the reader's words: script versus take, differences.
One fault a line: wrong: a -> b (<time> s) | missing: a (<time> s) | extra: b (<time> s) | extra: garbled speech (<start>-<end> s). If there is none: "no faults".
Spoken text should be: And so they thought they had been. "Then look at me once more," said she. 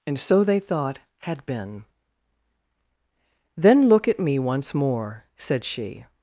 missing: they (1.0 s)